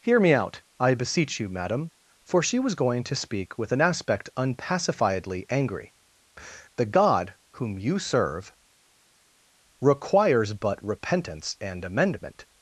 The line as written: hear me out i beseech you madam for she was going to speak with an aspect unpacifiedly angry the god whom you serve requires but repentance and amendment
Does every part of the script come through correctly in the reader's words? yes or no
yes